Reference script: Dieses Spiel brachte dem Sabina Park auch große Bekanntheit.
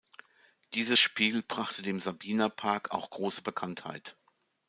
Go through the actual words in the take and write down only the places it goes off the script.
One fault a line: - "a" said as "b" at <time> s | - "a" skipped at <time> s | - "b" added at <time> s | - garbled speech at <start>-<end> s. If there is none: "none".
none